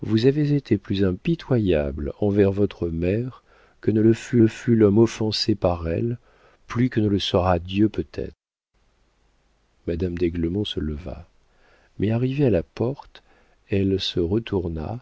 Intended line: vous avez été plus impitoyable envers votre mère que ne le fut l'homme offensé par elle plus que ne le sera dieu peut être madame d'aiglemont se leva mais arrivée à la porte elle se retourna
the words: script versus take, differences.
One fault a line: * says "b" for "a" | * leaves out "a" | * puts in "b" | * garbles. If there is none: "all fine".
* puts in "le fut"